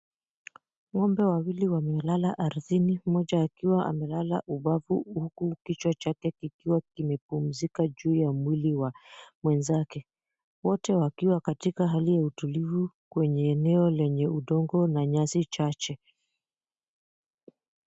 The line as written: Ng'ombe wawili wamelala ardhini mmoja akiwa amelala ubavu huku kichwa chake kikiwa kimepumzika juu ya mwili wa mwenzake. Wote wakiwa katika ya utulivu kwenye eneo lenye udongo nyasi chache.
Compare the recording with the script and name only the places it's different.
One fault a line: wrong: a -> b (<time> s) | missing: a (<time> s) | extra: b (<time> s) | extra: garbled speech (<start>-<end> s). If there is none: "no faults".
extra: hali (11.9 s)
extra: na (14.9 s)